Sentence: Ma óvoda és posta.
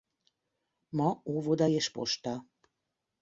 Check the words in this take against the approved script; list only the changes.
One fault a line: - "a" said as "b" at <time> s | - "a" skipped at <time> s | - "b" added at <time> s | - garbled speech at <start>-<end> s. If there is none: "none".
none